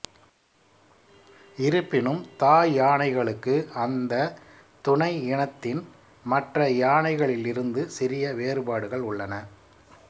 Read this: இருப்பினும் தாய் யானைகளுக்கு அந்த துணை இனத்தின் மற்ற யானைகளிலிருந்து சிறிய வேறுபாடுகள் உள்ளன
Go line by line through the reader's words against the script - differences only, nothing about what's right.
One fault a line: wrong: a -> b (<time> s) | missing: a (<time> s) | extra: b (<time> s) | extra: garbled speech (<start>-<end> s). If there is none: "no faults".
no faults